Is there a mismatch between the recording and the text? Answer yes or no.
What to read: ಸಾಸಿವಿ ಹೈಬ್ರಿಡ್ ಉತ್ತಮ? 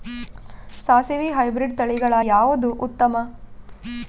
yes